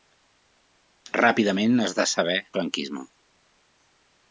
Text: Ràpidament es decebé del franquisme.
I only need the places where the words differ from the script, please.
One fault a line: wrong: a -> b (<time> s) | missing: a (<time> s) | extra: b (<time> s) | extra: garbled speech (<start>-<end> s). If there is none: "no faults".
missing: del (2.4 s)